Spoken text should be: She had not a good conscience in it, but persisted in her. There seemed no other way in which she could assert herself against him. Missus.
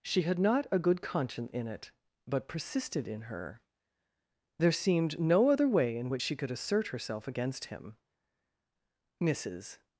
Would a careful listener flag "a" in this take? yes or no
no